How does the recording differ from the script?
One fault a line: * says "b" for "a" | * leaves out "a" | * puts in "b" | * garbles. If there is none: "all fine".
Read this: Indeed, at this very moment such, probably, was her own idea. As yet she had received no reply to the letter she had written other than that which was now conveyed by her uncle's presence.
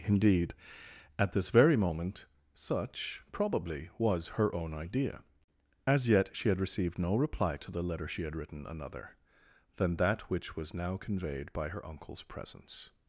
* says "another" for "other"